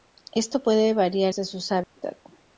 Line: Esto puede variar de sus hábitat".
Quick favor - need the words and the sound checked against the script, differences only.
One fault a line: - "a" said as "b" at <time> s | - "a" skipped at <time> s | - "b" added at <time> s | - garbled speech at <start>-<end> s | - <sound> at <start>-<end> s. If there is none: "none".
- dropout at 1.8-2.0 s